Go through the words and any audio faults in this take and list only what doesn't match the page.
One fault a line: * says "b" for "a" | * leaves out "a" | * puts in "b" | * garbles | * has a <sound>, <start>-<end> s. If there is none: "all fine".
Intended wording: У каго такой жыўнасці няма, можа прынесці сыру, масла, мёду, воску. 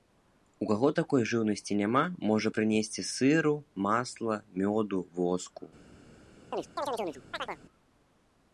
* has a chirp, 6.5-7.6 s